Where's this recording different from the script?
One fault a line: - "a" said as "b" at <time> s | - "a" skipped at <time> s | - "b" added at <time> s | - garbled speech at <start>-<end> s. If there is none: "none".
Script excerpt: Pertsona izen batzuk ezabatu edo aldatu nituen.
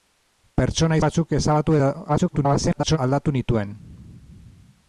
- "izen" skipped at 1.0 s
- garbled speech at 2.1-3.0 s